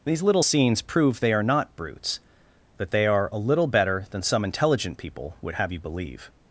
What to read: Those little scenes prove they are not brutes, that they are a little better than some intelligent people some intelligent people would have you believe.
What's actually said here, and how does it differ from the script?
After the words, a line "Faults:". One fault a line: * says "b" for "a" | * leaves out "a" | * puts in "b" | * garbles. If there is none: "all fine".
These little scenes prove they are not brutes, that they are a little better than some intelligent people would have you believe.
Faults:
* says "These" for "Those"
* leaves out "some intelligent people"